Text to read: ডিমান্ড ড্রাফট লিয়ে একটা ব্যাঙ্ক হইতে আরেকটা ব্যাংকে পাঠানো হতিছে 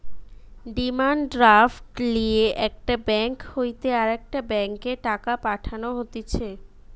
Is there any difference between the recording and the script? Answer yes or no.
yes